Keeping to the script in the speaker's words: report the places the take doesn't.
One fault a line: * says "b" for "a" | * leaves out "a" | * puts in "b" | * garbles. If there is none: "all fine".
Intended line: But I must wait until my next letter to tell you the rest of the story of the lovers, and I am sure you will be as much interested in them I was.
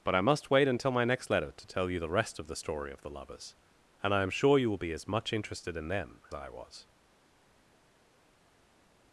all fine